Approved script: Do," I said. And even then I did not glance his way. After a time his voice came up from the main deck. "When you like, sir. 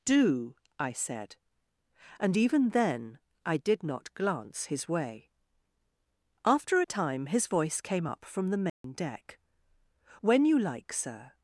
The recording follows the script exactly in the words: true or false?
true